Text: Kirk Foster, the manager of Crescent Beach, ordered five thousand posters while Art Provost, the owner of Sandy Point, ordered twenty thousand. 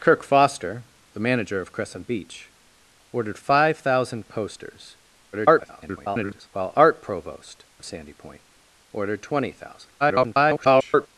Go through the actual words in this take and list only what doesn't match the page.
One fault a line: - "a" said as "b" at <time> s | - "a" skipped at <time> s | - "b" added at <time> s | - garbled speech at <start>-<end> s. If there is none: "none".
- garbled speech at 5.3-6.5 s
- "the owner" skipped at 7.6 s
- garbled speech at 10.0-11.1 s